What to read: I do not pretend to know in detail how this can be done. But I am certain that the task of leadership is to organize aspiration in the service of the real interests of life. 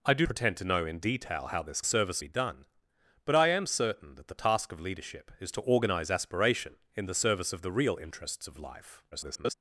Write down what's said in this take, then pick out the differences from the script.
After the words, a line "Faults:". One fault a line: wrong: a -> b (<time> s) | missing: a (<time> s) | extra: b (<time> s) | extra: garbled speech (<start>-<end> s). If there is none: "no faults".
I do pretend to know in detail how this service be done. But I am certain that the task of leadership is to organize aspiration in the service of the real interests of life. [garbled]
Faults:
missing: not (0.2 s)
wrong: can -> service (1.8 s)
extra: garbled speech (9.1-9.5 s)